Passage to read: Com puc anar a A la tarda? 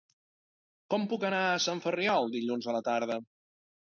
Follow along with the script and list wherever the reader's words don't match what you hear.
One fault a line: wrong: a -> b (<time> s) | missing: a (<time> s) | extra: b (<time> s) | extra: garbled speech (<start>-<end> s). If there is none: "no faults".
extra: Sant Ferriol dilluns (1.6 s)